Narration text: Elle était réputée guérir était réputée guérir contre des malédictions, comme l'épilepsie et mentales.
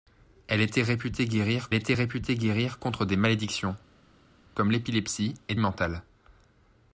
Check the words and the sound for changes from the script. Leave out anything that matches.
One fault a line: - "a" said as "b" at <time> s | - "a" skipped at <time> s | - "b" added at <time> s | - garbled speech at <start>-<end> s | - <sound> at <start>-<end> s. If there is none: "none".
none